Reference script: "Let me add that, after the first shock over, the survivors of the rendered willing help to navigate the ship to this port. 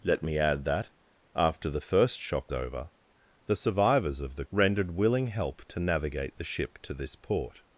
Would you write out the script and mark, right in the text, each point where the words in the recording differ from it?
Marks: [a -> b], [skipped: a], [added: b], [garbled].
"Let me add that, after the first shock over, the survivors of the rendered willing help to navigate the ship to this port.